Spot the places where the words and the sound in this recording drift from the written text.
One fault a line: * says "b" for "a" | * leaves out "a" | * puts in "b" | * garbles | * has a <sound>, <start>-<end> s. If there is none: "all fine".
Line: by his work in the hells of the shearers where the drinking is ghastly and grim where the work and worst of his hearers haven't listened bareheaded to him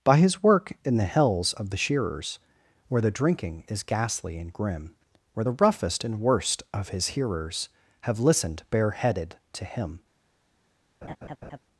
* says "roughest" for "work"
* says "have" for "haven't"
* has a laugh, 11.0-11.6 s